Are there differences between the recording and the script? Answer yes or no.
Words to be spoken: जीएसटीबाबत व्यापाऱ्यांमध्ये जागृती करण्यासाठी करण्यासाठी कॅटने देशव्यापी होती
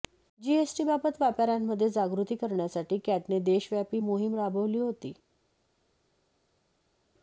yes